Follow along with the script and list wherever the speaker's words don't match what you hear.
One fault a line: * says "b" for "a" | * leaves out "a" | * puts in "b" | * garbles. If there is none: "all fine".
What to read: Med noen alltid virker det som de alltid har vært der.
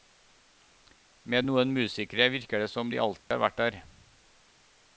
* says "musikere" for "alltid"